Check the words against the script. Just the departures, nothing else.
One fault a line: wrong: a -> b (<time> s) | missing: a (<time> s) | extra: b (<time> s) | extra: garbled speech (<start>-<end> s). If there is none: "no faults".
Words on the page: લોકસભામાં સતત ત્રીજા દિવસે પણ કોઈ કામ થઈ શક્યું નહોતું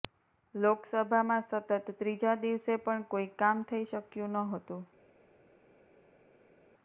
no faults